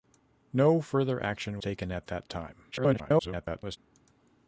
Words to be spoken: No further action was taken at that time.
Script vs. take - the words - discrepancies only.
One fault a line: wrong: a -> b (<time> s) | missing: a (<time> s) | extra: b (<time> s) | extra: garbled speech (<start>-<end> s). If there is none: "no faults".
missing: was (1.6 s)
extra: garbled speech (2.7-3.8 s)